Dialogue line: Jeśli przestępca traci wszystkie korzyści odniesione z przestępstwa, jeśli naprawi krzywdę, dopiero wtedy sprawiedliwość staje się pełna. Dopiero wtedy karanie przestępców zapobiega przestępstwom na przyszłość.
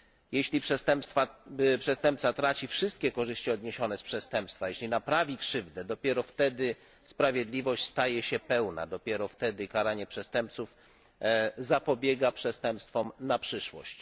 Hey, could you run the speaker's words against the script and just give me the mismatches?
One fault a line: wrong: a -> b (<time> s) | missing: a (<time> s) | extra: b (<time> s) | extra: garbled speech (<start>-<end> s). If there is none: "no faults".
no faults